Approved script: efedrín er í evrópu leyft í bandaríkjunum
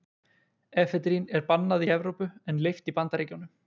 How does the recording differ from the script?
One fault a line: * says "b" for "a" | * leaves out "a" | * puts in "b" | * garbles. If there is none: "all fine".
* puts in "bannað"
* puts in "en"